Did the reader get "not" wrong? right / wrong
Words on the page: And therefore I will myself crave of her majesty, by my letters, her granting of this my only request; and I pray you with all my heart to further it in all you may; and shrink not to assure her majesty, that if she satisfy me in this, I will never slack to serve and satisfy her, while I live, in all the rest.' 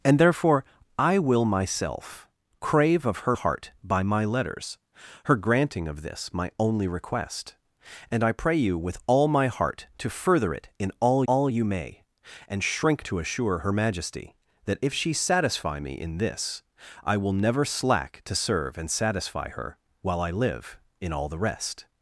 wrong